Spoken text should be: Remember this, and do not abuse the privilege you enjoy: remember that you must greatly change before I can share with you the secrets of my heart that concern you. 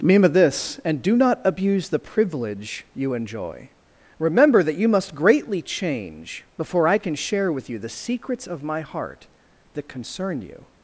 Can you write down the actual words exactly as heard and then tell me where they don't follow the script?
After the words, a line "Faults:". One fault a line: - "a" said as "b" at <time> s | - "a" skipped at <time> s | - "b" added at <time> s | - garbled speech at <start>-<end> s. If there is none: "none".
Remember this, and do not abuse the privilege you enjoy: remember that you must greatly change before I can share with you the secrets of my heart that concern you.
Faults:
none